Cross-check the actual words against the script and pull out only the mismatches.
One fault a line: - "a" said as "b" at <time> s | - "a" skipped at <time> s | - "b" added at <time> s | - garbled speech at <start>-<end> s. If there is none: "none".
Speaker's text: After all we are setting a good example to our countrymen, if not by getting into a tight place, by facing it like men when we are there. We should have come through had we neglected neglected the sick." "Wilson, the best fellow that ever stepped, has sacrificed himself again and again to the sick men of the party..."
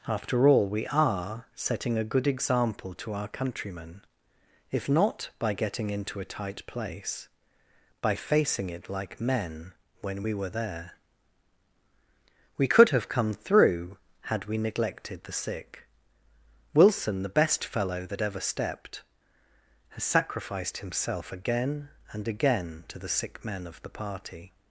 - "are" said as "were" at 10.3 s
- "should" said as "could" at 12.7 s
- "neglected" skipped at 15.2 s